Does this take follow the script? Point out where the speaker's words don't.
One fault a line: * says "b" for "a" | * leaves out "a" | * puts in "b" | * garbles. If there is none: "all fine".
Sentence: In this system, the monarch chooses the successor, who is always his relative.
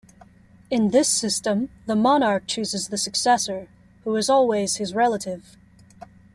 all fine